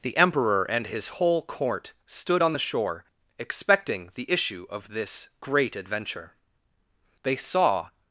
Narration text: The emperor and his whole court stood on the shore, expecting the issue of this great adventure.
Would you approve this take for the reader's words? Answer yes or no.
no